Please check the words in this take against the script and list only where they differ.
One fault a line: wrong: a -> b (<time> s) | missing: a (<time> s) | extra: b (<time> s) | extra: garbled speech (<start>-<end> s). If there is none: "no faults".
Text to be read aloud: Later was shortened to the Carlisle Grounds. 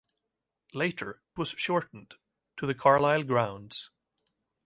no faults